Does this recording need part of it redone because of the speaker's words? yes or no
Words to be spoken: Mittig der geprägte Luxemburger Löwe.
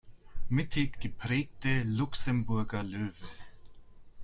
yes